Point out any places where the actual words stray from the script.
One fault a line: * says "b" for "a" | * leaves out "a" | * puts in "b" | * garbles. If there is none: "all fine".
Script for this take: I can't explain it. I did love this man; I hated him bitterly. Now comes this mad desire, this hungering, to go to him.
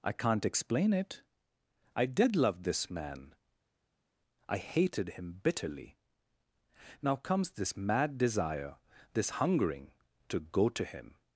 all fine